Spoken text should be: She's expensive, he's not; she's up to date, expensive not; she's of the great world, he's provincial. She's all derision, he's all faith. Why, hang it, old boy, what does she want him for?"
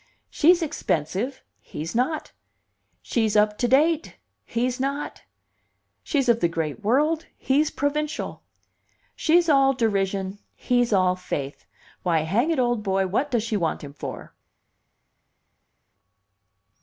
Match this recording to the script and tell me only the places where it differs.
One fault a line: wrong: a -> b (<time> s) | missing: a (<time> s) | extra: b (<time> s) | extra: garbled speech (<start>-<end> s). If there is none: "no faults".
wrong: expensive -> he's (4.4 s)